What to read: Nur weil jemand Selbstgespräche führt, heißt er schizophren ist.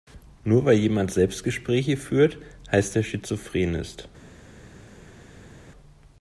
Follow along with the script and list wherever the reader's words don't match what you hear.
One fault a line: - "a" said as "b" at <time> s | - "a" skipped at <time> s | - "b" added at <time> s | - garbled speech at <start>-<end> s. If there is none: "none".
none